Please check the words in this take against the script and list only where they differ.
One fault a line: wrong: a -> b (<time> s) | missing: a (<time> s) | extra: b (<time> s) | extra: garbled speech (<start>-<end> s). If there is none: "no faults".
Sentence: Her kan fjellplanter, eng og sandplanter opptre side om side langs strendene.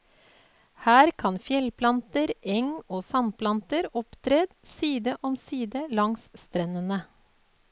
no faults